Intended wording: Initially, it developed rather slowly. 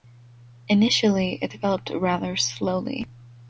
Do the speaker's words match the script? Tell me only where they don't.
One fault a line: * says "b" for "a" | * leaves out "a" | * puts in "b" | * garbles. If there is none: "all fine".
all fine